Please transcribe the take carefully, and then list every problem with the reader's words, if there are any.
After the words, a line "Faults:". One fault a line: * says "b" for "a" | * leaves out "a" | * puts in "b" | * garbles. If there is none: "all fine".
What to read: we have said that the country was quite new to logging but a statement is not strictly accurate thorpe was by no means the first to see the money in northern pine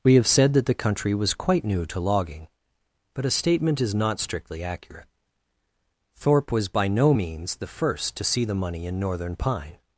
we have said that the country was quite new to logging but a statement is not strictly accurate thorpe was by no means the first to see the money in northern pine
Faults:
all fine